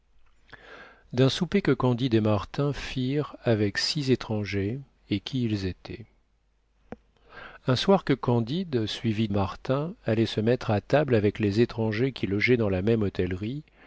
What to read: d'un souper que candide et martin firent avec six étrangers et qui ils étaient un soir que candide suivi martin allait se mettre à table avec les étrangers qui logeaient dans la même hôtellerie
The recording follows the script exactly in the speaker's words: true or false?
true